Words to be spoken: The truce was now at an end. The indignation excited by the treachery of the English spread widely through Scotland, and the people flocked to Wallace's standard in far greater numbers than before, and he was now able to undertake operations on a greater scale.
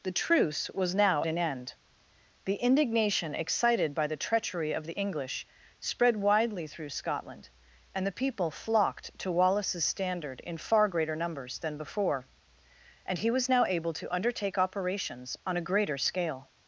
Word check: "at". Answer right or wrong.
wrong